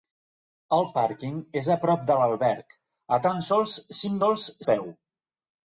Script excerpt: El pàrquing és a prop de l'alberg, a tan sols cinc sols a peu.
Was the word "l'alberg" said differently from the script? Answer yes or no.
no